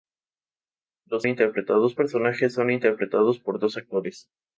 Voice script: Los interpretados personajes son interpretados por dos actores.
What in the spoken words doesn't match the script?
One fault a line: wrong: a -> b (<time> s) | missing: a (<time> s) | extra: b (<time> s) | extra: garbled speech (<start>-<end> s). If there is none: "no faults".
no faults